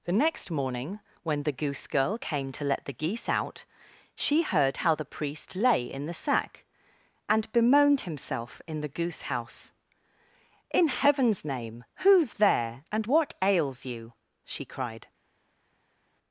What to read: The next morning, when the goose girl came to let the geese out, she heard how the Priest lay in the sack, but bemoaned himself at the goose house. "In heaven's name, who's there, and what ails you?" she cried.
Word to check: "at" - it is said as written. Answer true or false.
false